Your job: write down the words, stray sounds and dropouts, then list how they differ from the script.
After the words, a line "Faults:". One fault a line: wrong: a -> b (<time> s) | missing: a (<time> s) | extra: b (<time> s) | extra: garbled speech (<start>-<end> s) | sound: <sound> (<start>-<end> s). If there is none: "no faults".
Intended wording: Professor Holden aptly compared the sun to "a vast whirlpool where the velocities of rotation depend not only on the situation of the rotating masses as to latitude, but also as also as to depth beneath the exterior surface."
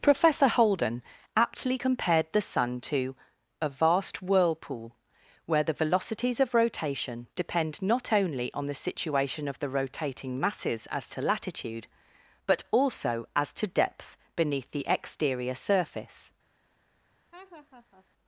Professor Holden aptly compared the sun to "a vast whirlpool where the velocities of rotation depend not only on the situation of the rotating masses as to latitude, but also as to depth beneath the exterior surface."
Faults:
missing: also as (13.5 s)
sound: laugh (17.3-18.1 s)